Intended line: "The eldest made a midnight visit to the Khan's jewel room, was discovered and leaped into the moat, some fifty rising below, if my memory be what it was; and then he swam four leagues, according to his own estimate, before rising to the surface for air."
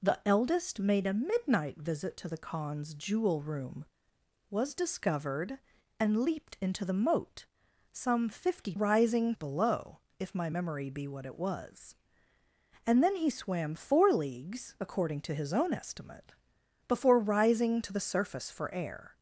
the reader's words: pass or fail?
pass